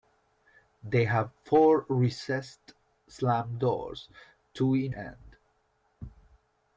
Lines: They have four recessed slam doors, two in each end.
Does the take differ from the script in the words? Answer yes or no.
yes